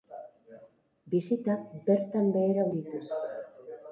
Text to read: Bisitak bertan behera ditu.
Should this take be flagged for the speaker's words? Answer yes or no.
no